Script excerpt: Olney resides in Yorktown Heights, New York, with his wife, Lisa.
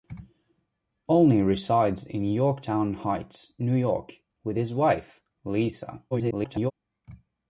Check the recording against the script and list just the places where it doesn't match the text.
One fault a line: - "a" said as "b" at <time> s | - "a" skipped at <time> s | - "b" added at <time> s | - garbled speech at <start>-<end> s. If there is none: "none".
- garbled speech at 6.1-6.7 s